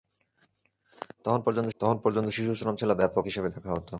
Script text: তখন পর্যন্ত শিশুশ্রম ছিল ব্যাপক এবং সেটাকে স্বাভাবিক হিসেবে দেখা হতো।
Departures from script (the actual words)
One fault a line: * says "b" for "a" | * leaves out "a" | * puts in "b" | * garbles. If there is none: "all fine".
* puts in "তখন পর্যন্ত"
* leaves out "এবং সেটাকে স্বাভাবিক"